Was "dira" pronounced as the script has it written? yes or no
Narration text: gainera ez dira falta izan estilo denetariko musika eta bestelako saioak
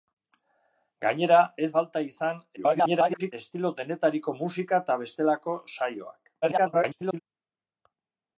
no